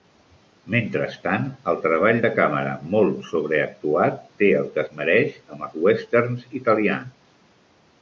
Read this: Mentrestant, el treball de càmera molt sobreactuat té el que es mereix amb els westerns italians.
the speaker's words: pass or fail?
pass